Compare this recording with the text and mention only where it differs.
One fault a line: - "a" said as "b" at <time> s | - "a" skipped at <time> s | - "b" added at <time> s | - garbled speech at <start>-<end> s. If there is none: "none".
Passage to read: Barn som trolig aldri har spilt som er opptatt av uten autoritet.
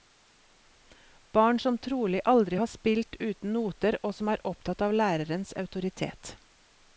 - "uten noter og" added at 3.2 s
- "uten" said as "lærerens" at 5.0 s